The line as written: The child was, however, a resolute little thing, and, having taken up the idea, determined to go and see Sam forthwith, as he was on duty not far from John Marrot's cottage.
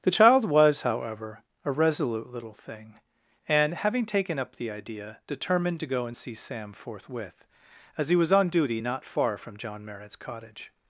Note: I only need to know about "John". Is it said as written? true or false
true